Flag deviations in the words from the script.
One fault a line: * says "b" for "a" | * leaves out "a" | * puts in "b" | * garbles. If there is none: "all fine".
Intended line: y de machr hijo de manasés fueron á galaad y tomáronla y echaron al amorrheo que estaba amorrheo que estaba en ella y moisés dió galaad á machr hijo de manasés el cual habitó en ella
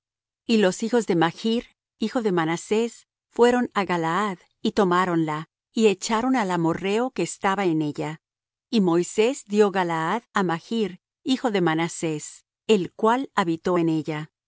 * puts in "los hijos"
* leaves out "amorrheo que estaba"